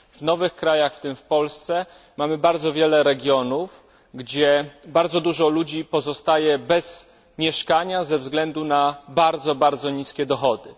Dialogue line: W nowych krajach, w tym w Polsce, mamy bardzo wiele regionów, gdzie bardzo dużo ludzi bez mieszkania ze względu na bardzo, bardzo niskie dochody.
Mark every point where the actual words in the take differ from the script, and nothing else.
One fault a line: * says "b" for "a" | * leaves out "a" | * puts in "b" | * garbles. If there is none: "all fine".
* puts in "pozostaje"